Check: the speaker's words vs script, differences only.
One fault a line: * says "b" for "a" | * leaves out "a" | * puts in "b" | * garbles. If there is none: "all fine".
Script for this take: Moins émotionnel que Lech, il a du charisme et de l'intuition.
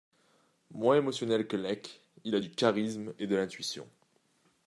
all fine